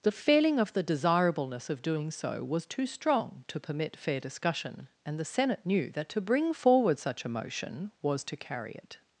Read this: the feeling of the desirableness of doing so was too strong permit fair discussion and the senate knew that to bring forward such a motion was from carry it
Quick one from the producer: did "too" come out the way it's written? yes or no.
yes